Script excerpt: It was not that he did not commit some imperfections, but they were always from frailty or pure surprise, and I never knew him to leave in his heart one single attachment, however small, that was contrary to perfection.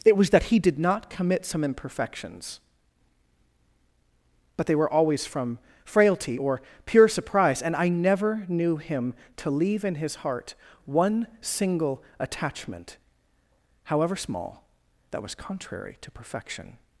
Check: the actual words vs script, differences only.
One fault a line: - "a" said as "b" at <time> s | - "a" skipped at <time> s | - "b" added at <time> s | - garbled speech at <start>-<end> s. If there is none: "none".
- "not" skipped at 0.3 s